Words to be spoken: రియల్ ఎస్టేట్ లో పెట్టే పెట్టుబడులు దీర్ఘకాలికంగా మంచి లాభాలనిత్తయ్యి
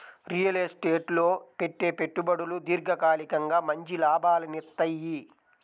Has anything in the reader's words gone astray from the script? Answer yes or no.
no